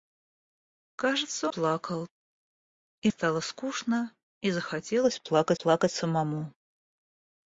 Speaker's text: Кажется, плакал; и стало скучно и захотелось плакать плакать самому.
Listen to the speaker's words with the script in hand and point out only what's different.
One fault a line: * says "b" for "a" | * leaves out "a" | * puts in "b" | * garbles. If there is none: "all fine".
all fine